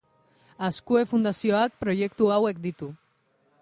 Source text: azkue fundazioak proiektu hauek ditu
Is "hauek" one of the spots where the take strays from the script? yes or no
no